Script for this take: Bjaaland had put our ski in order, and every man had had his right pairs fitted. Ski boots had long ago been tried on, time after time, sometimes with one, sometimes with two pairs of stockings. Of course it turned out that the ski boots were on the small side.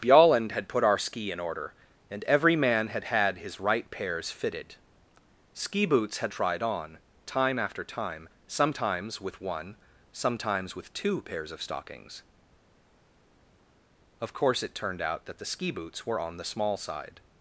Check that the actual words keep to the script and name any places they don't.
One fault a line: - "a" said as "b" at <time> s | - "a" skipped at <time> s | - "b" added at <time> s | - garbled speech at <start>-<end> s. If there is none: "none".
- "long ago been" skipped at 6.3 s